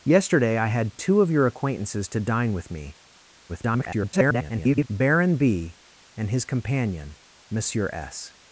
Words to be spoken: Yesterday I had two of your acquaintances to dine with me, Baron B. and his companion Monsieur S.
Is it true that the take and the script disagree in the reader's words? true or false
true